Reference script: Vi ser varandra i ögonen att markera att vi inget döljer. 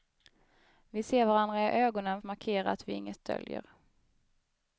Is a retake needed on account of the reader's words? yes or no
no